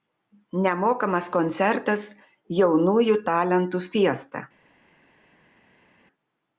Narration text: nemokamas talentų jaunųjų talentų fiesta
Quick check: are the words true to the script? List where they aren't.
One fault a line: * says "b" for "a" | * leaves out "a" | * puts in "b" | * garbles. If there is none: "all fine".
* says "koncertas" for "talentų"